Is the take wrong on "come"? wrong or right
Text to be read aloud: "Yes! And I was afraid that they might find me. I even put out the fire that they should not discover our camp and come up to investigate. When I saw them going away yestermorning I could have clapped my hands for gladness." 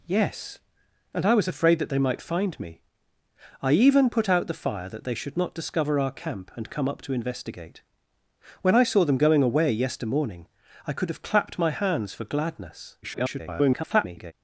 right